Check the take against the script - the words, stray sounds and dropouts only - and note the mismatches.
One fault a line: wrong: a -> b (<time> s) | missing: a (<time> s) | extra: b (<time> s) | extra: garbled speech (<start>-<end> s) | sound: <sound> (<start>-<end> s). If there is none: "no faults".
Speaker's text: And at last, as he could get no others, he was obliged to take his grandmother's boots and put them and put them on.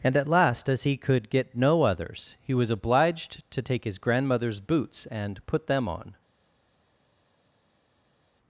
missing: and put them (5.9 s)